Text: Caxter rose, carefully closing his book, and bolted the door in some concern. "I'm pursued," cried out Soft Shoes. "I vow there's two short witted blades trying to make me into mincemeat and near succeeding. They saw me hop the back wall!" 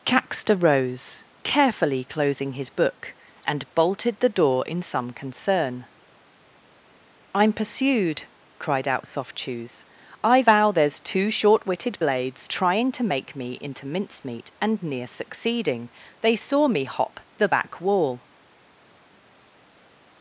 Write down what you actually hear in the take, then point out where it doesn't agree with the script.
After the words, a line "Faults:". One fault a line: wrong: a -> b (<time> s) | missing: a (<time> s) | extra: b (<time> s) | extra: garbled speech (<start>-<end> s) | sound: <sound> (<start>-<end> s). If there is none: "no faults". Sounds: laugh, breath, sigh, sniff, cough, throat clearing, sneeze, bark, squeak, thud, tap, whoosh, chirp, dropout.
Caxter rose, carefully closing his book, and bolted the door in some concern. "I'm pursued," cried out Soft Shoes. "I vow there's two short witted blades trying to make me into mincemeat and near succeeding. They saw me hop the back wall!"
Faults:
no faults